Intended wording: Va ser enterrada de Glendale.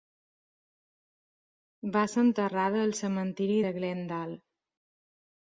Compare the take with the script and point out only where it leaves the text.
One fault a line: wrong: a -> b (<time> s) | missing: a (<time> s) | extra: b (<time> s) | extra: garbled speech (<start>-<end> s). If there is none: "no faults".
extra: al Cementiri (2.9 s)